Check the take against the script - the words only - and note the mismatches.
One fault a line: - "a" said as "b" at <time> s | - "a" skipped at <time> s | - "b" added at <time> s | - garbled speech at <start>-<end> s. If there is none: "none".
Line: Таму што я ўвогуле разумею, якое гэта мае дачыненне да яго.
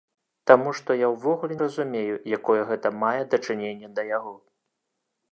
none